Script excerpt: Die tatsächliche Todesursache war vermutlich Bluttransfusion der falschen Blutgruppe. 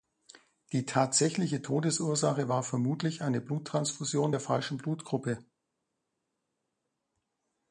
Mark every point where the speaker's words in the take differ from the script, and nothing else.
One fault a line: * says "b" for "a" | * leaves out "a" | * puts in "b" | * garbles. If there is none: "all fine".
* puts in "eine"